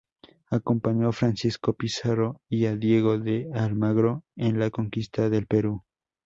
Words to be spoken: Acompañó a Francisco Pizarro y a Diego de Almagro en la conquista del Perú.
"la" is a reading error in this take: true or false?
false